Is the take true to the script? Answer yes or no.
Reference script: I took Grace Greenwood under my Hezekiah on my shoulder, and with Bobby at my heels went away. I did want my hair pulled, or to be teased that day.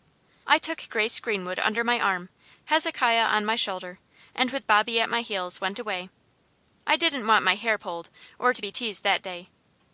no